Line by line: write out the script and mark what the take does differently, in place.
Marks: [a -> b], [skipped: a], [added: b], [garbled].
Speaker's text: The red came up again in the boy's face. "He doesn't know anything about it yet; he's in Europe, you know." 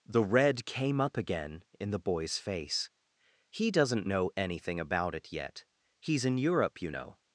The red came up again in the boy's face. "He doesn't know anything about it yet; he's in Europe, you know."